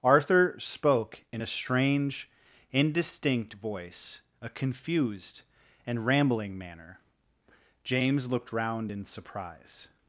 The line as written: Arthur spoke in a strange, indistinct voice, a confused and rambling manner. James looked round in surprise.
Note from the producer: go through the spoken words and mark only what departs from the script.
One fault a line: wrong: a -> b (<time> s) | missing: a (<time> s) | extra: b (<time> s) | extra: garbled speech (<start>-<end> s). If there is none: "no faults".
no faults